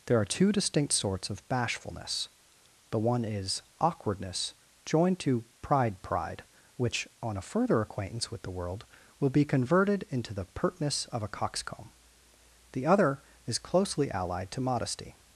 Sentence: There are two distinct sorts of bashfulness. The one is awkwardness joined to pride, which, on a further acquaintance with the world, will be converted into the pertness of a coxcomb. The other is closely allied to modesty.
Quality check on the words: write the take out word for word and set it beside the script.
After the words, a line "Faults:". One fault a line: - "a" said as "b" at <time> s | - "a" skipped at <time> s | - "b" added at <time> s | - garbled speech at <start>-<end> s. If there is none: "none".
There are two distinct sorts of bashfulness. The one is awkwardness joined to pride pride, which, on a further acquaintance with the world, will be converted into the pertness of a coxcomb. The other is closely allied to modesty.
Faults:
- "pride" added at 6.0 s